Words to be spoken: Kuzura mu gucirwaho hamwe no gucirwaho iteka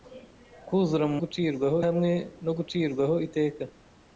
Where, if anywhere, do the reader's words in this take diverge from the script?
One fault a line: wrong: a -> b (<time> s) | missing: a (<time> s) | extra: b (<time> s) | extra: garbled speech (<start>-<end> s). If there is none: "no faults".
no faults